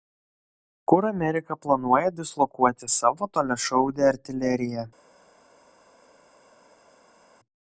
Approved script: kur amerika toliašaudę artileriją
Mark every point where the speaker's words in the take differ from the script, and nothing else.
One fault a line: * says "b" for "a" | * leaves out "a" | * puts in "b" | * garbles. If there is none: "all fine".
* puts in "planuoja dislokuoti savo"